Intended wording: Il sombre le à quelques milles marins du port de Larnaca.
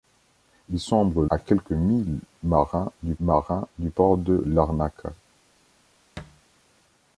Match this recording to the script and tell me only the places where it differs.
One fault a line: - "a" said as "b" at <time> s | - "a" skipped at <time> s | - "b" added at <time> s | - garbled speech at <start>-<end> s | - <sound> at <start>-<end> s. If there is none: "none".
- "le" skipped at 1.2 s
- "marins du" added at 3.2 s
- thud at 6.2-6.4 s